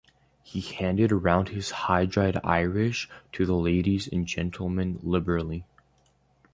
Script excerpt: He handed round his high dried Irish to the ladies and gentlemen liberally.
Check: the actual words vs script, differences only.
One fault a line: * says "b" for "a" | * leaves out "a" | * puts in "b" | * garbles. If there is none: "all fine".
all fine